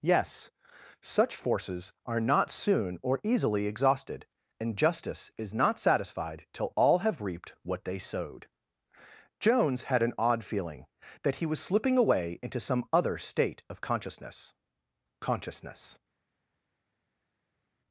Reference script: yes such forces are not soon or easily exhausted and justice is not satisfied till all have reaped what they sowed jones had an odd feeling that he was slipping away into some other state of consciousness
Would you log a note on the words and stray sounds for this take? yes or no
yes